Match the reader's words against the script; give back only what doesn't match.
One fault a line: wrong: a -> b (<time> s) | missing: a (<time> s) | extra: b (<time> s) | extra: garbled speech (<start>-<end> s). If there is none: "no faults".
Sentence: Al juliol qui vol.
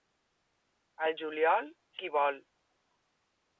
no faults